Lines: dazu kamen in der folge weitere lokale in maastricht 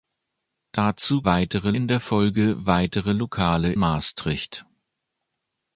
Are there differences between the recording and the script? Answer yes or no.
yes